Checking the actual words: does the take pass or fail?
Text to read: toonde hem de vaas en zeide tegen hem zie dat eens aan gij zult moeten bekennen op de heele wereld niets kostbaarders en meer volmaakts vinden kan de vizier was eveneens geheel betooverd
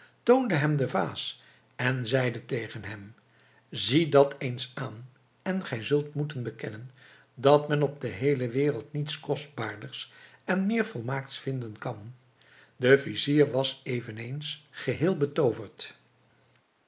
fail